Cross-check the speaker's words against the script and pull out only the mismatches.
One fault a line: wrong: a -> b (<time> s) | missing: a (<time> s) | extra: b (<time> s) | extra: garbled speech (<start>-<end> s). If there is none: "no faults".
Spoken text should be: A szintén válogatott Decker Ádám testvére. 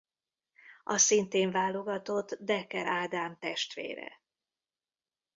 no faults